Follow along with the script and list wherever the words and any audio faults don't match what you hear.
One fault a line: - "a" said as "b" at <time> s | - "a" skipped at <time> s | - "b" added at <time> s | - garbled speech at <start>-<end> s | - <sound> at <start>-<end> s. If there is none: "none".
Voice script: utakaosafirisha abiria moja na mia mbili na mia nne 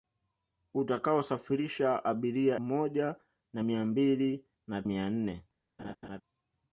- laugh at 5.8-6.2 s